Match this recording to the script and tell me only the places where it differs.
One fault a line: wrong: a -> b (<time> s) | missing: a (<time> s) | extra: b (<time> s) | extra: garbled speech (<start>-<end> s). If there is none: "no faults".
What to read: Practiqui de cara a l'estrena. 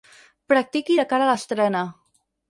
no faults